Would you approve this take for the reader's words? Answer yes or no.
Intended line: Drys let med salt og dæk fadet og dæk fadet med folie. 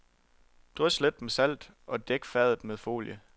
no